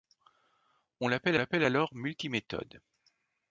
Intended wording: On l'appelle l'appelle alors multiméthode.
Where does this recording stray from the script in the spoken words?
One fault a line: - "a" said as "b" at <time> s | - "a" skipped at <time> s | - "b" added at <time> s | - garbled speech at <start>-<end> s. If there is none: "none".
none